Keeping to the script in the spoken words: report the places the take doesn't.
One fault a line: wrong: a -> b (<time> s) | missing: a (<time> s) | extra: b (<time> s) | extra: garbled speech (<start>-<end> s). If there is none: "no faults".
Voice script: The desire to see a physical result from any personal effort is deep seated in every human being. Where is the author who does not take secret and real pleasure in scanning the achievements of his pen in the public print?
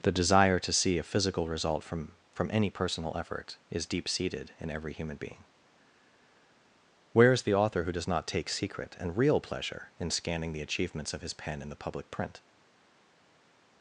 extra: from (2.3 s)